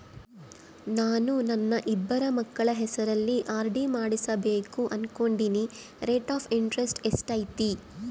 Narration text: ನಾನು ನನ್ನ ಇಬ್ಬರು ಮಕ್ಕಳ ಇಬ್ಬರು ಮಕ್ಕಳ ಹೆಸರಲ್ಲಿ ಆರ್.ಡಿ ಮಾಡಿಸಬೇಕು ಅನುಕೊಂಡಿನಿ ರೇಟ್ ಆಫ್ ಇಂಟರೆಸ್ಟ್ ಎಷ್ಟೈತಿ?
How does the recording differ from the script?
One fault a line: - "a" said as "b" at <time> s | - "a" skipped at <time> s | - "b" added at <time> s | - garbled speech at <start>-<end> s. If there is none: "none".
- "ಇಬ್ಬರು ಮಕ್ಕಳ" skipped at 2.7 s